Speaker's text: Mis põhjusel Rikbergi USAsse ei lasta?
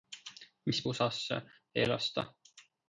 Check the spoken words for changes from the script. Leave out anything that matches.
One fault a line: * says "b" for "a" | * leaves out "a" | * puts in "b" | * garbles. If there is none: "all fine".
* leaves out "põhjusel Rikbergi"